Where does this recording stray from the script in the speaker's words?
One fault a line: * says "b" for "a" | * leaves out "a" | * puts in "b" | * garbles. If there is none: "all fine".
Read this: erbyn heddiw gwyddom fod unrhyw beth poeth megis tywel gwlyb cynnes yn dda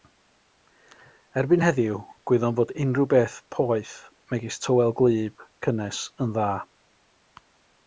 all fine